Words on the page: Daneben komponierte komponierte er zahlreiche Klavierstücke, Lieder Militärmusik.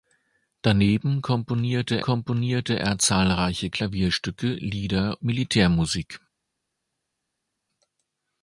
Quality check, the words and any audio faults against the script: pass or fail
pass